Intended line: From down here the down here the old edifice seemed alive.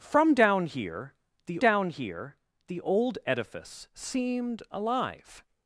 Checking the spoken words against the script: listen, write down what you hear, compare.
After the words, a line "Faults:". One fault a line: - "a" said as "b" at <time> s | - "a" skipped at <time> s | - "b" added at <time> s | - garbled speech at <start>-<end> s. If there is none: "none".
From down here the down here the old edifice seemed alive.
Faults:
none